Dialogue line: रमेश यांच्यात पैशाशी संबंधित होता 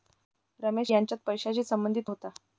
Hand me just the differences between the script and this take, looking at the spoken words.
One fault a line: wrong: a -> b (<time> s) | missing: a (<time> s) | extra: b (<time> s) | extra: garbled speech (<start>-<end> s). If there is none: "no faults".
no faults